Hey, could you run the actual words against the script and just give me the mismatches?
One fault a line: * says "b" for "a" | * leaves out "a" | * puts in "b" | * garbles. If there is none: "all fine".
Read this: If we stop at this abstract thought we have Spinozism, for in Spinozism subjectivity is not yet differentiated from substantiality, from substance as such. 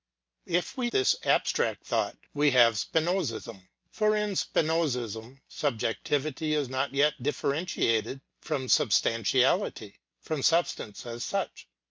* leaves out "stop at"